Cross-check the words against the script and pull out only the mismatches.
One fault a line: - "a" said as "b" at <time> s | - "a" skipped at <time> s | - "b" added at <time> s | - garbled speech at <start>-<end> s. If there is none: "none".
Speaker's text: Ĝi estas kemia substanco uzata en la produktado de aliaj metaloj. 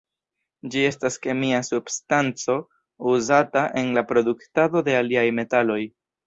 none